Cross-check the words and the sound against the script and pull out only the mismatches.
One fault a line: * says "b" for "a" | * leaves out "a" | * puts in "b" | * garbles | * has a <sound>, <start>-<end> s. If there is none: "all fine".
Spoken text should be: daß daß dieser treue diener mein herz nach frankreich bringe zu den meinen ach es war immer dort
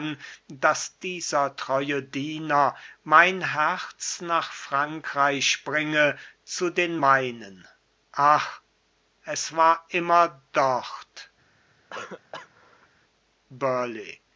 * leaves out "daß"
* has a cough, 11.9-12.9 s